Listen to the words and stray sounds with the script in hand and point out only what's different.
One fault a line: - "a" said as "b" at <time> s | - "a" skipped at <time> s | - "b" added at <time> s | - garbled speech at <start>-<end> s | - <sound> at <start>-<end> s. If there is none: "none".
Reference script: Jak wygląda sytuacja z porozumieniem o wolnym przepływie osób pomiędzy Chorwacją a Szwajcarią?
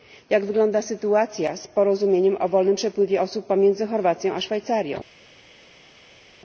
none